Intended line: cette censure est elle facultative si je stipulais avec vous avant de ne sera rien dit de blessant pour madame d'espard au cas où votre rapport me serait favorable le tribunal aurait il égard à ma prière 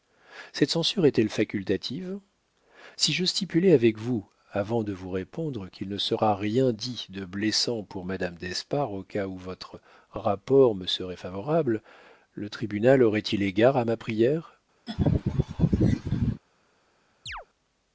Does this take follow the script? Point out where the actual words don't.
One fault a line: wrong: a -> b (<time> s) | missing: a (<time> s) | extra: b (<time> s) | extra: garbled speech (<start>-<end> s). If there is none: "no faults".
extra: vous répondre qu'il (4.9 s)